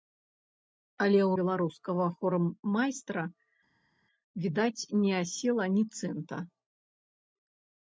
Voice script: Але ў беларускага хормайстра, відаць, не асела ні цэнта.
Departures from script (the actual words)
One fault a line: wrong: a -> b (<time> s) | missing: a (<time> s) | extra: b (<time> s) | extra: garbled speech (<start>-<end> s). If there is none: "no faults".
no faults